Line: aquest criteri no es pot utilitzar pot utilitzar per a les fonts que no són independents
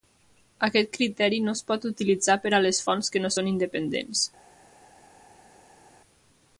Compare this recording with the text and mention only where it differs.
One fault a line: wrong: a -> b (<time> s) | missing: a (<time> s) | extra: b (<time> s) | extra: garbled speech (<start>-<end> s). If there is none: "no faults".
missing: pot utilitzar (2.4 s)